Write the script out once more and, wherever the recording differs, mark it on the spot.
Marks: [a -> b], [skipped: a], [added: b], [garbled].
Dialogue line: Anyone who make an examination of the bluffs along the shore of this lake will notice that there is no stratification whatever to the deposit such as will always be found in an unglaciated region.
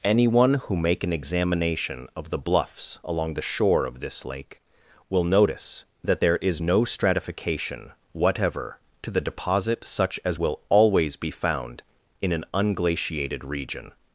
Anyone who make an examination of the bluffs along the shore of this lake will notice that there is no stratification whatever to the deposit such as will always be found in an unglaciated region.